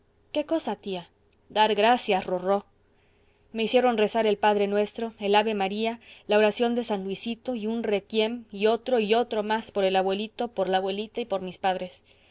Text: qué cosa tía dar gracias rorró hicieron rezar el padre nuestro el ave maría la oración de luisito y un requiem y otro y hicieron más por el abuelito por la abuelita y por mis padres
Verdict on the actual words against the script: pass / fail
fail